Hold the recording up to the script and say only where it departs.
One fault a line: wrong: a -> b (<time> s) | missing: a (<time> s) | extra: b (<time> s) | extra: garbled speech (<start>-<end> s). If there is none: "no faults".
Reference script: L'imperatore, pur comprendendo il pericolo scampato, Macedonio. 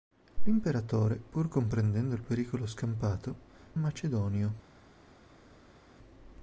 no faults